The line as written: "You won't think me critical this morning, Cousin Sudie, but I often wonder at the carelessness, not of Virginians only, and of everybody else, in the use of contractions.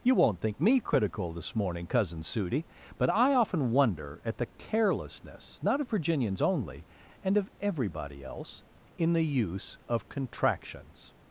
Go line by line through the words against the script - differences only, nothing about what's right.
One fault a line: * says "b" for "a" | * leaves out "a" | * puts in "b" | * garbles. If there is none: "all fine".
all fine